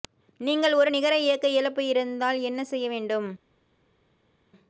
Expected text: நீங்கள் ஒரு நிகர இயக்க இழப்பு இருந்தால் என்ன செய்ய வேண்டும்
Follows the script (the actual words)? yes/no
yes